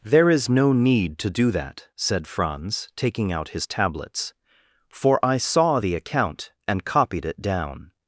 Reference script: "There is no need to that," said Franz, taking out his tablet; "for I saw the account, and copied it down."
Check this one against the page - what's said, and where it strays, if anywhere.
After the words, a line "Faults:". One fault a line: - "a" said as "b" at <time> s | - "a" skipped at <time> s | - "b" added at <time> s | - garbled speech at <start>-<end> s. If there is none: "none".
"There is no need to do that," said Franz, taking out his tablets; "for I saw the account, and copied it down."
Faults:
- "do" added at 1.3 s
- "tablet" said as "tablets" at 3.7 s